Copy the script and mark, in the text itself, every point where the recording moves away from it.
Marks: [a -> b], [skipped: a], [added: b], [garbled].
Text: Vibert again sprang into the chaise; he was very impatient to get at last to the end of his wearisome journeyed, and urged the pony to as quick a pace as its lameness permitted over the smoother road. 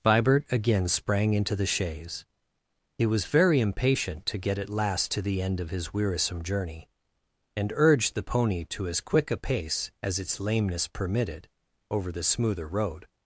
Vibert again sprang into the chaise; he was very impatient to get at last to the end of his wearisome [journeyed, -> journey] and urged the pony to as quick a pace as its lameness permitted over the smoother road.